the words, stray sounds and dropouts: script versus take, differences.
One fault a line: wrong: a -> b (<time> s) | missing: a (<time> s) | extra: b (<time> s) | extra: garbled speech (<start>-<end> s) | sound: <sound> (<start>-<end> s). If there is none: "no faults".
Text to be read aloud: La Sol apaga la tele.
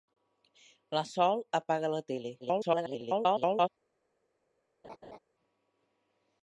extra: garbled speech (2.4-3.7 s)
sound: laugh (4.8-5.2 s)